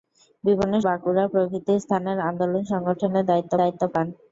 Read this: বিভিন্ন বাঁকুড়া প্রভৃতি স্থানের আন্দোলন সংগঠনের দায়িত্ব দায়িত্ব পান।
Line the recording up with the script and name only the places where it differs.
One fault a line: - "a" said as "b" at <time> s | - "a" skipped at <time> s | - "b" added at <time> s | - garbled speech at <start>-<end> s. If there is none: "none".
none